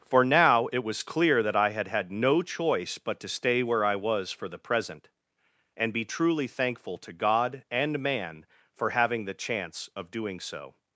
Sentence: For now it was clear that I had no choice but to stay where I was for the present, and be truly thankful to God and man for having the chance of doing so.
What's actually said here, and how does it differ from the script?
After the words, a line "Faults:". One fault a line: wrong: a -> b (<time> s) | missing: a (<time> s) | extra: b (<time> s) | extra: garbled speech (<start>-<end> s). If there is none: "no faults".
For now it was clear that I had had no choice but to stay where I was for the present, and be truly thankful to God and man for having the chance of doing so.
Faults:
extra: had (1.9 s)